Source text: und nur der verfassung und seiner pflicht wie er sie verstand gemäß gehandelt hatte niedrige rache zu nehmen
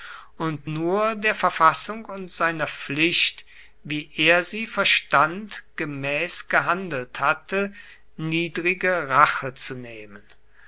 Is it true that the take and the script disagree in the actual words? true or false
false